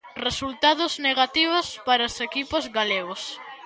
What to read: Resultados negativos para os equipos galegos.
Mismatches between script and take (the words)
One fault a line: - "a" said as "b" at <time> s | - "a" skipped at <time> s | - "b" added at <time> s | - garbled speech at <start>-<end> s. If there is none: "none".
none